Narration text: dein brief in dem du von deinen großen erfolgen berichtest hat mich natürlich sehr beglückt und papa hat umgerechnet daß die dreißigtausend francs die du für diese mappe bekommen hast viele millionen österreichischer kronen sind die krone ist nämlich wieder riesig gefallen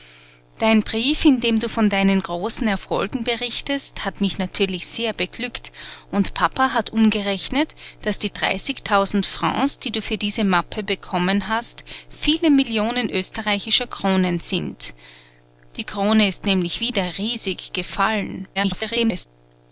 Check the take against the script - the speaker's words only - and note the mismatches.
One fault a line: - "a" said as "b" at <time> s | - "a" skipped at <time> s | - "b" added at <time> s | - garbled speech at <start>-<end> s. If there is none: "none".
- garbled speech at 18.6-19.3 s